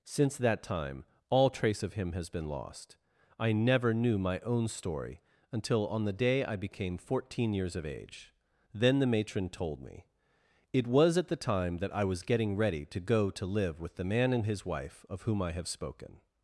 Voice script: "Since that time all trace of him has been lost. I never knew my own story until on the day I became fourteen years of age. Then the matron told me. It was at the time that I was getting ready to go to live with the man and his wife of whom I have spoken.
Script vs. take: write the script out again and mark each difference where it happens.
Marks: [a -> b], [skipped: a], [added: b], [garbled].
"Since that time all trace of him has been lost. I never knew my own story until on the day I became fourteen years of age. Then the matron told me. It was at the time that I was getting ready to go to live with the man and his wife of whom I have spoken.